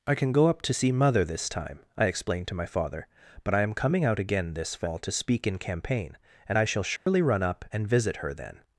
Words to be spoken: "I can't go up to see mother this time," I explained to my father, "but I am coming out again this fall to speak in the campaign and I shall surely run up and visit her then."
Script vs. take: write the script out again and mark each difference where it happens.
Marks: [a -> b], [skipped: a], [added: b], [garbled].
"I [can't -> can] go up to see mother this time," I explained to my father, "but I am coming out again this fall to speak in [skipped: the] campaign and I shall surely run up and visit her then."